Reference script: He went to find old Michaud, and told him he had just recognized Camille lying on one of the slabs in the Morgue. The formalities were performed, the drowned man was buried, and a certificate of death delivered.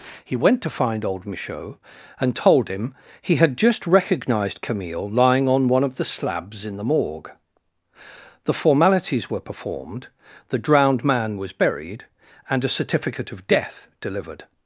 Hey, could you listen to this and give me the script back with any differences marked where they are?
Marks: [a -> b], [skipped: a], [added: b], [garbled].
He went to find old Michaud, and told him he had just recognized Camille lying on one of the slabs in the Morgue. The formalities were performed, the drowned man was buried, and a certificate of death delivered.